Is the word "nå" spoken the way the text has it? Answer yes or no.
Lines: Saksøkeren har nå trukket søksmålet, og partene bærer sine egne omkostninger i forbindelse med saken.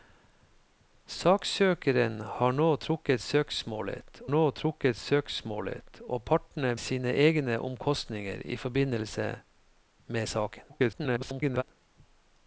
yes